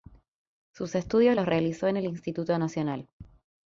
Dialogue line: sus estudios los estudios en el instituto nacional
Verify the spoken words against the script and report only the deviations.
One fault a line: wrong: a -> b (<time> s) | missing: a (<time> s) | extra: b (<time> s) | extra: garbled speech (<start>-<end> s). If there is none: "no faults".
wrong: estudios -> realizó (1.4 s)